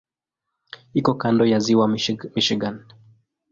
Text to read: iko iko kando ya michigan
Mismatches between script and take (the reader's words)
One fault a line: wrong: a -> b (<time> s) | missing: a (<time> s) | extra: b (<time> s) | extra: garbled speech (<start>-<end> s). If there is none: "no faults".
missing: iko (1.1 s)
extra: ziwa (1.6 s)